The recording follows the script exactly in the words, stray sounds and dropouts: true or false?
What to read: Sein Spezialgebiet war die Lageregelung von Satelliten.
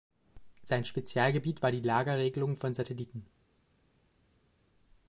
true